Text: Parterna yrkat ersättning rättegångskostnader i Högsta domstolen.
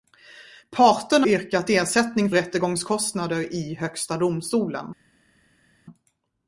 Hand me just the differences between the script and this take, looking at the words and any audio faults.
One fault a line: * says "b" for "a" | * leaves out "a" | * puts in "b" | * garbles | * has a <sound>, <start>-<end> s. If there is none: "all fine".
all fine